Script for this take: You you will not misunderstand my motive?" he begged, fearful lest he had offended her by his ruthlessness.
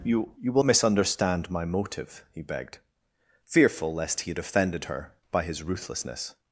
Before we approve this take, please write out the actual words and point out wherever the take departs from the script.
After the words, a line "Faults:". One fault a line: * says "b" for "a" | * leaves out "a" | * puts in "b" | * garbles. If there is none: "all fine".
You you will misunderstand my motive?" he begged, fearful lest he had offended her by his ruthlessness.
Faults:
* leaves out "not"